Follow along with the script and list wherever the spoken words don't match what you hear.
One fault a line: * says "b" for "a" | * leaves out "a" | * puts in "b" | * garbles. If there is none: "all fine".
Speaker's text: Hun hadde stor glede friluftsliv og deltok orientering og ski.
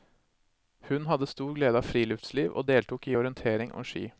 * puts in "av"
* puts in "i"